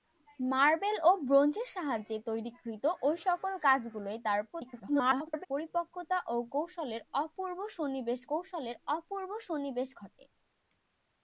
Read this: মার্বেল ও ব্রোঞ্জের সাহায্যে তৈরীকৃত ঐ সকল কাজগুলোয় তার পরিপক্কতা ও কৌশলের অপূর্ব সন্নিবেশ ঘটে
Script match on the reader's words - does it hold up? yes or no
no